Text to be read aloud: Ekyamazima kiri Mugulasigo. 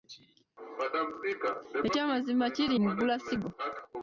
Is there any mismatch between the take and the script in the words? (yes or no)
no